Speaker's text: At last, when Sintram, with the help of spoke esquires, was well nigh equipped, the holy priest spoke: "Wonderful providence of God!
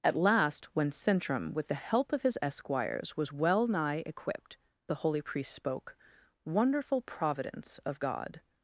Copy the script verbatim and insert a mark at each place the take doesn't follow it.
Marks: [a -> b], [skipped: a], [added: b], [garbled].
At last, when Sintram, with the help of [spoke -> his] esquires, was well nigh equipped, the holy priest spoke: "Wonderful providence of God!